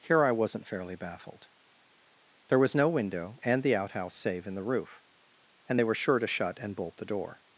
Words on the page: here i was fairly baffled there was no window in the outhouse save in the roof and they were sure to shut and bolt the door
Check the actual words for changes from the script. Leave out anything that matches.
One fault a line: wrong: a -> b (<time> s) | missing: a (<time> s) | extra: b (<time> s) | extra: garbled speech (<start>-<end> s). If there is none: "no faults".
wrong: was -> wasn't (0.3 s)
wrong: in -> and (3.4 s)